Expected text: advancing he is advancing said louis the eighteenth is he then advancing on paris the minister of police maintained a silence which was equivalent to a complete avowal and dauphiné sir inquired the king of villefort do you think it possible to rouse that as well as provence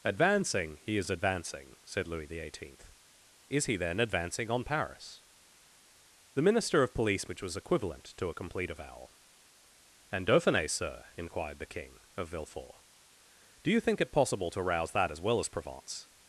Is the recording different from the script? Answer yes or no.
yes